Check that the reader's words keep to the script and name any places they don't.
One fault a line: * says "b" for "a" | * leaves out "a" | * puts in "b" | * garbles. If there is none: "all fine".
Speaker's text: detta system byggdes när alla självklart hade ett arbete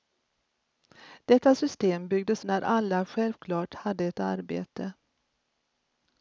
all fine